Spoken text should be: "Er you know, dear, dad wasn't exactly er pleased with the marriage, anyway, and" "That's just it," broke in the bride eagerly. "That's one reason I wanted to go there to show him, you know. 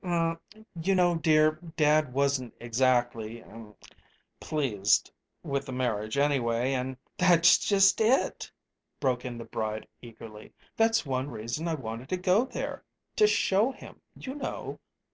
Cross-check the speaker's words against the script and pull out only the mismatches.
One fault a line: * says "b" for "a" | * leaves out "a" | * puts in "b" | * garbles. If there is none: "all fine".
all fine